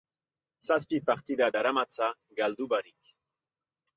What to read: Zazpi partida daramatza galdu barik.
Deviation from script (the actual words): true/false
false